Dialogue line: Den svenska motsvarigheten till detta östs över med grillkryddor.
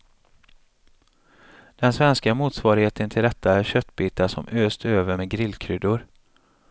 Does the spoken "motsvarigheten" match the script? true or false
true